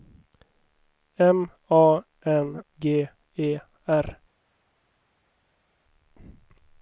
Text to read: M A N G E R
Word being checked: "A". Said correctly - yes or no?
yes